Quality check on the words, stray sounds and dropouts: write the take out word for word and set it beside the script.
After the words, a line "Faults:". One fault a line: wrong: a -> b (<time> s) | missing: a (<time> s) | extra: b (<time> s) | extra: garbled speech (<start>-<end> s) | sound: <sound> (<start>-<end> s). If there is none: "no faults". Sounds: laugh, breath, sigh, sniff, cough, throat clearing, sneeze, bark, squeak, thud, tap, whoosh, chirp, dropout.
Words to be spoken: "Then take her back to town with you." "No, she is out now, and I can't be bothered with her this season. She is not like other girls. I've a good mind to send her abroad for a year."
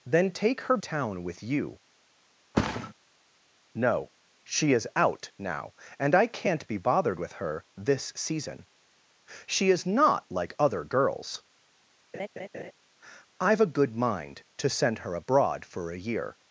"Then take her town with you." "No, she is out now, and I can't be bothered with her this season. She is not like other girls. I've a good mind to send her abroad for a year."
Faults:
missing: back to (0.8 s)
sound: thud (2.5-2.9 s)
sound: laugh (12.1-12.7 s)